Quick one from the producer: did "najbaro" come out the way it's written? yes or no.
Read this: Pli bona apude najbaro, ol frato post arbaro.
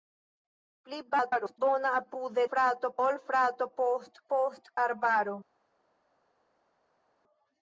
no